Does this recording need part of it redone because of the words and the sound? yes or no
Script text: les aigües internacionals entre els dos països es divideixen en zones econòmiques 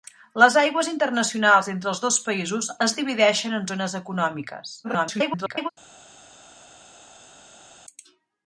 yes